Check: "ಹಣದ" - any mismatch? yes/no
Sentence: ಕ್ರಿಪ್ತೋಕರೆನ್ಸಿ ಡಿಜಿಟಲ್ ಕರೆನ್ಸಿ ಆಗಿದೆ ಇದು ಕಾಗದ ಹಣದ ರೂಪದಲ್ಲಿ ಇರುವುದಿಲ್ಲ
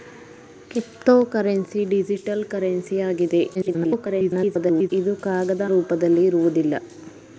yes